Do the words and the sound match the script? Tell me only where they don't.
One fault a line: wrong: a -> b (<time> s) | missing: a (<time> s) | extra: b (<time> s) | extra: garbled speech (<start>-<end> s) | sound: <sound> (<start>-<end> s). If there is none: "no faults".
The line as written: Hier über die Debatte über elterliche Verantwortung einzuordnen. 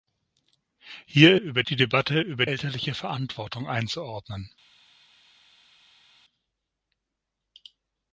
no faults